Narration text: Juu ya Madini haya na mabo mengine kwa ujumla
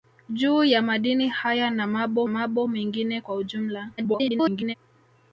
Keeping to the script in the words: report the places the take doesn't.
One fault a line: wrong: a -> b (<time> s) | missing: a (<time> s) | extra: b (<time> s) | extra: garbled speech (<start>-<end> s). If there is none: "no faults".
extra: mabo (2.3 s)
extra: garbled speech (4.0-4.7 s)